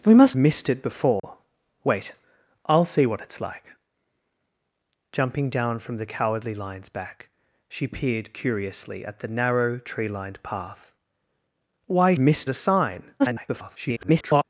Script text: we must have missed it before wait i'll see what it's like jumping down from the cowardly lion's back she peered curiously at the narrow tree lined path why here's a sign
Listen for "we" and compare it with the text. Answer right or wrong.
right